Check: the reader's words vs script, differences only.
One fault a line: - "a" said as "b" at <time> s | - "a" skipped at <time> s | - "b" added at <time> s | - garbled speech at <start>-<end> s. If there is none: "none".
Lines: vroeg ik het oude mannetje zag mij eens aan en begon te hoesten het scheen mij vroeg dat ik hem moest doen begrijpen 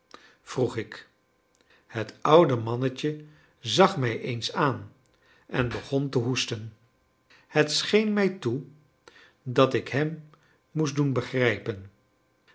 - "vroeg" said as "toe" at 8.3 s